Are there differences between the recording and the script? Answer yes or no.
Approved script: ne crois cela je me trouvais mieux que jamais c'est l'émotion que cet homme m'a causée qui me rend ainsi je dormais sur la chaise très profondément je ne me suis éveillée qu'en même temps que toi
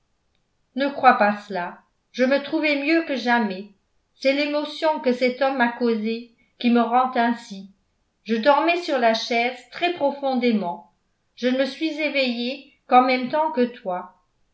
yes